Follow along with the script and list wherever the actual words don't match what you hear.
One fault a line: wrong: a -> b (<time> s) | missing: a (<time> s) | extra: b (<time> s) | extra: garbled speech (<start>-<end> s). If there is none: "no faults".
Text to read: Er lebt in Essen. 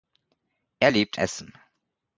missing: in (1.2 s)